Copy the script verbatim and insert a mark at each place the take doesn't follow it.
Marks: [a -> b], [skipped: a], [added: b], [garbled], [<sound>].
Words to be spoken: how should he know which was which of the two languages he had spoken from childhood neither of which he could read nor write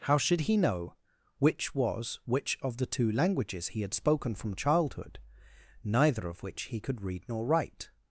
how should he know which was which of the two languages he had spoken from childhood neither of which he could read nor write